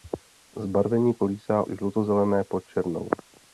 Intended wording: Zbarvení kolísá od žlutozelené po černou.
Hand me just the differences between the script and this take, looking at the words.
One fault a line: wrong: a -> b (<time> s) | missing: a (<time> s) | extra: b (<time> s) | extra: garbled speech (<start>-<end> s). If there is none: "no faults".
missing: od (1.7 s)